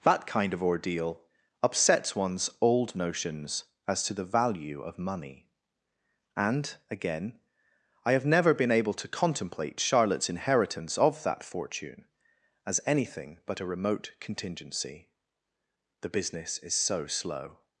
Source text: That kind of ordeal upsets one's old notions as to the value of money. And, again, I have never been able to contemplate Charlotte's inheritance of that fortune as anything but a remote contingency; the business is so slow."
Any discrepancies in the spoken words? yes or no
no